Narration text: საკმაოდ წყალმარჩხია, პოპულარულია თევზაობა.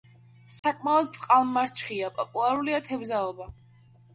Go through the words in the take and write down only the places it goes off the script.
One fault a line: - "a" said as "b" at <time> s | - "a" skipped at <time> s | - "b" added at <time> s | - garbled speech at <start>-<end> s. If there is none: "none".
none